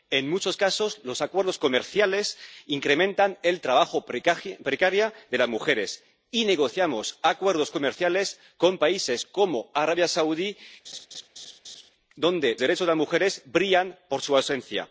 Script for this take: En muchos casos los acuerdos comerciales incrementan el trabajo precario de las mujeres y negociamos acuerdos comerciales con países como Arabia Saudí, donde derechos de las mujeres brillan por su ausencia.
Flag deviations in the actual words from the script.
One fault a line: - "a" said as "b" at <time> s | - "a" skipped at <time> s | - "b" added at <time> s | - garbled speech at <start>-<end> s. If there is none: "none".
none